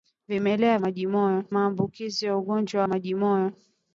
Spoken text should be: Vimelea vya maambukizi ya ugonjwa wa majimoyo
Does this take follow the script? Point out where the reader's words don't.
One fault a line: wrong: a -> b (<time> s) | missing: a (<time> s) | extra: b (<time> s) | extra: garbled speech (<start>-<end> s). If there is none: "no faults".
wrong: vya -> majimoyo (0.8 s)
missing: wa (2.8 s)